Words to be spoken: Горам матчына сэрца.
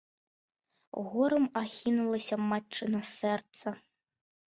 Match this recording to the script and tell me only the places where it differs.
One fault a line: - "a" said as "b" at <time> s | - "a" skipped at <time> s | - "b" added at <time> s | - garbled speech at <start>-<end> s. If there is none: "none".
- "ахінулася" added at 1.6 s